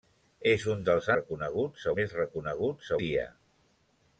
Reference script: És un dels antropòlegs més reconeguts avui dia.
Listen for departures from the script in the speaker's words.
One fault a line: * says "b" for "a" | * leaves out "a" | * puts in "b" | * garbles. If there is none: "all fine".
* says "reconeguts" for "antropòlegs"
* leaves out "avui"